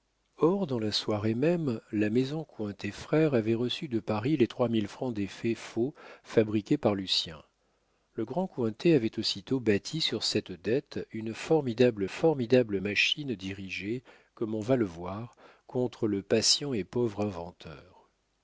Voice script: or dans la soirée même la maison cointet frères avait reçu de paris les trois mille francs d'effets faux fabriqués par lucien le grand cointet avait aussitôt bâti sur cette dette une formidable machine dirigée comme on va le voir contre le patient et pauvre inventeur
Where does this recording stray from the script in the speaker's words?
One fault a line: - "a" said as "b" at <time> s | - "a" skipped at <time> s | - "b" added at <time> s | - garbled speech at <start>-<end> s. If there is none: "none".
- "formidable" added at 12.1 s